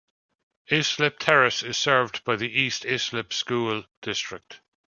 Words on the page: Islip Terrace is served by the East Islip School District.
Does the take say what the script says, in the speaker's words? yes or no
yes